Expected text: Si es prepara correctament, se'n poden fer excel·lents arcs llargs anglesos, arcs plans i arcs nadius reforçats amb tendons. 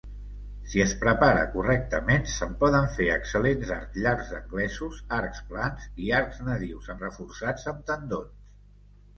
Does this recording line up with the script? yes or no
yes